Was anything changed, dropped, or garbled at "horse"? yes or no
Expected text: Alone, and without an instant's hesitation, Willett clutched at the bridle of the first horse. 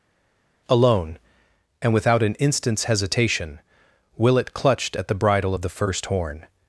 yes